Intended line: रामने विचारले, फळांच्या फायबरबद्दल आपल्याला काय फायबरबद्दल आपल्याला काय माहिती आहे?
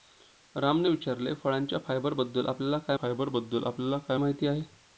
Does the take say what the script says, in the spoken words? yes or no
yes